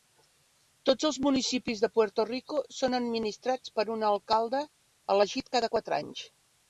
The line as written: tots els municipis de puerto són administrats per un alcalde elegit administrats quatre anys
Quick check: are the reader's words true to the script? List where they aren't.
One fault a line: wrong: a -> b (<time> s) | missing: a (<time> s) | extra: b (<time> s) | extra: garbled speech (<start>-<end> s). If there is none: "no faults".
extra: rico (2.3 s)
wrong: administrats -> cada (5.6 s)